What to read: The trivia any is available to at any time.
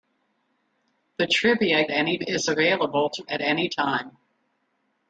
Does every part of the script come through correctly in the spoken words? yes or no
yes